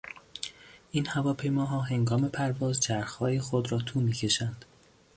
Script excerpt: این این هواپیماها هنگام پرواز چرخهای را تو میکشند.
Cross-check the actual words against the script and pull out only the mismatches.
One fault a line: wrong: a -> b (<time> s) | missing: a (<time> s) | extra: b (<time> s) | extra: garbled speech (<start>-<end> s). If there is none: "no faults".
missing: این (1.1 s)
extra: خود (3.4 s)